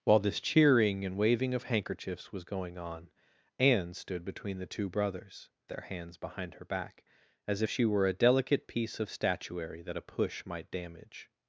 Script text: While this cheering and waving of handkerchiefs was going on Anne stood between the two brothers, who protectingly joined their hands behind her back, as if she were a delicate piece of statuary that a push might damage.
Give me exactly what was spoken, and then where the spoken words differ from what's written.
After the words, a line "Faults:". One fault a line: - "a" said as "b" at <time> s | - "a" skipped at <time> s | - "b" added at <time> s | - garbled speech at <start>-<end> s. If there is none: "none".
While this cheering and waving of handkerchiefs was going on Anne stood between the two brothers, their hands behind her back, as she were a delicate piece of statuary that a push might damage.
Faults:
- "who protectingly joined" skipped at 5.5 s
- "if" skipped at 7.6 s